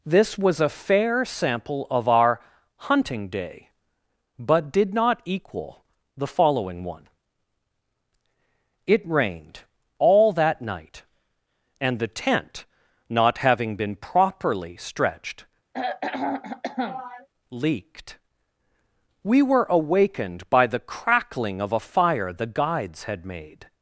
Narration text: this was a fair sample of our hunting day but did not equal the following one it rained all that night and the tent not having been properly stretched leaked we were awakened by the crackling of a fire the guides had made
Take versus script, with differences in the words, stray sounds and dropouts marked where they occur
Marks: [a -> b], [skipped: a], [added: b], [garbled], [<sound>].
this was a fair sample of our hunting day but did not equal the following one it rained all that night and the tent not having been properly stretched [throat clearing] leaked we were awakened by the crackling of a fire the guides had made